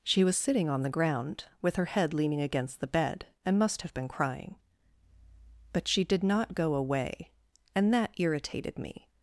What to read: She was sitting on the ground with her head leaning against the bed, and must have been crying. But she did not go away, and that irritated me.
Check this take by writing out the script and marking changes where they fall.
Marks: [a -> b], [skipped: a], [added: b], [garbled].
She was sitting on the ground with her head leaning against the bed, and must have been crying. But she did not go away, and that irritated me.